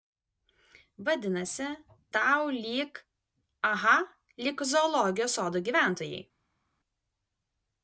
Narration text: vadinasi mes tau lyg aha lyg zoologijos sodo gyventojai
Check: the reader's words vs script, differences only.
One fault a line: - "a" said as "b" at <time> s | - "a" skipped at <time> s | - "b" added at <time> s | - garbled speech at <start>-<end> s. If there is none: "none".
- "mes" skipped at 1.7 s